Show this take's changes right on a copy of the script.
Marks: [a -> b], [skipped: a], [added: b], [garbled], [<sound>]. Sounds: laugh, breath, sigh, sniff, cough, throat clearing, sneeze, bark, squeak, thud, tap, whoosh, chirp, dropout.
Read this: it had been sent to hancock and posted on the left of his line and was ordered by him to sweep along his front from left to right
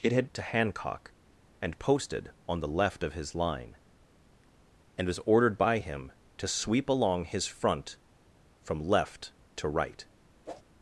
it had [skipped: been sent] to hancock and posted on the left of his line and was ordered by him to sweep along his front from left to right [whoosh]